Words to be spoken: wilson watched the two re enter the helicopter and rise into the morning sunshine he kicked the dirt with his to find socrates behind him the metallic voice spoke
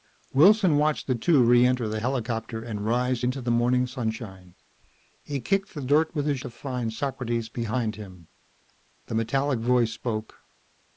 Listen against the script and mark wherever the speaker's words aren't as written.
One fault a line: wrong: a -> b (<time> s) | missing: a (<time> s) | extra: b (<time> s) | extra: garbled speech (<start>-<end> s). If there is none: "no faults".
no faults